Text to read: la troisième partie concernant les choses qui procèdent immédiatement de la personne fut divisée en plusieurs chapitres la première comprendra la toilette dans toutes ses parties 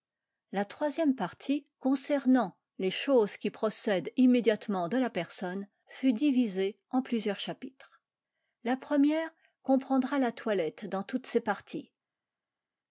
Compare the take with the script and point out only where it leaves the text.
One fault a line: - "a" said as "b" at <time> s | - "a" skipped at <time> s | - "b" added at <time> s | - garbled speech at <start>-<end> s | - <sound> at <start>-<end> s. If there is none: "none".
none